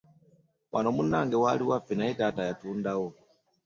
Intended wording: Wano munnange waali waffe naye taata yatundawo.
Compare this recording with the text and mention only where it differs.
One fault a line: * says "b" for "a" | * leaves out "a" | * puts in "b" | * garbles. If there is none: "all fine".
all fine